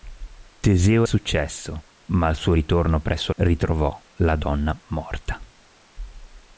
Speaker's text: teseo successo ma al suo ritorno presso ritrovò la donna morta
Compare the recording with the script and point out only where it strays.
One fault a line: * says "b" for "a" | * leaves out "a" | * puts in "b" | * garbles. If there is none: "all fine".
all fine